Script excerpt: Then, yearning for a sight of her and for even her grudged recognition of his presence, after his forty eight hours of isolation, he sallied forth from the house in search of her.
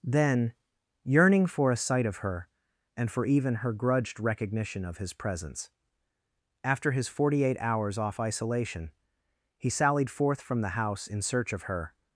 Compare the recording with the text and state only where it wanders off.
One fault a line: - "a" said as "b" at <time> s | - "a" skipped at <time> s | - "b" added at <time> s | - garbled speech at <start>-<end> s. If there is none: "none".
- "of" said as "off" at 8.0 s